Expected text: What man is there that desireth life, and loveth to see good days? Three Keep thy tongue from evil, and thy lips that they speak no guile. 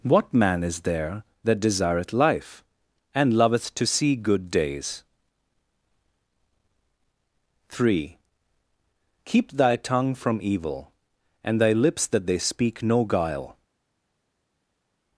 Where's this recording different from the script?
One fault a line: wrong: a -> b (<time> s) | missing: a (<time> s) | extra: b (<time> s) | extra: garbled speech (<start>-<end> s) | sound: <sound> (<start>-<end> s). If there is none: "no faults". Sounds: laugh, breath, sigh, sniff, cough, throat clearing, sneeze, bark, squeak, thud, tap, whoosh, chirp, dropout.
no faults